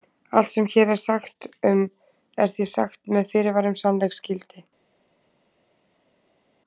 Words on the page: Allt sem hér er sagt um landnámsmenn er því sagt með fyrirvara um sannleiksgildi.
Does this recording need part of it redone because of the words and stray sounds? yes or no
yes